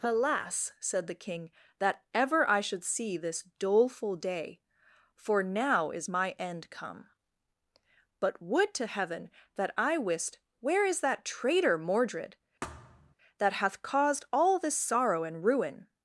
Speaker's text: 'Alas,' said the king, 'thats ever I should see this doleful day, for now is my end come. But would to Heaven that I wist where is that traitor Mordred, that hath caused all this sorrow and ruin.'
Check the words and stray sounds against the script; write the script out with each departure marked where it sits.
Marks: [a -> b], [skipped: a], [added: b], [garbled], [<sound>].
'Alas,' said the king, ['thats -> that] ever I should see this doleful day, for now is my end come. But would to Heaven that I wist where is that traitor Mordred, [thud] that hath caused all this sorrow and ruin.'